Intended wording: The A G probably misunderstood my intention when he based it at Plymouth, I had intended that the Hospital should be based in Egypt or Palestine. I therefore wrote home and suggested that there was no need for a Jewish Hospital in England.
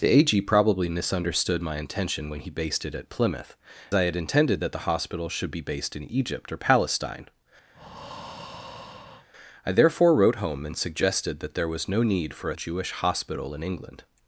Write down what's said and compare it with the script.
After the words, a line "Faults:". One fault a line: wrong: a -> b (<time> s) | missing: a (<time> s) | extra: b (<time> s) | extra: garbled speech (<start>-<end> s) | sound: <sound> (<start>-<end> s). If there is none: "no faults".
The A G probably misunderstood my intention when he based it at Plymouth, I had intended that the Hospital should be based in Egypt or Palestine. I therefore wrote home and suggested that there was no need for a Jewish Hospital in England.
Faults:
sound: breath (7.7-9.3 s)